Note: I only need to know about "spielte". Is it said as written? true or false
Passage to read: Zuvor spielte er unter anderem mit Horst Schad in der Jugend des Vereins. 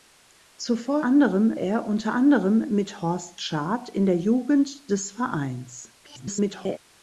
false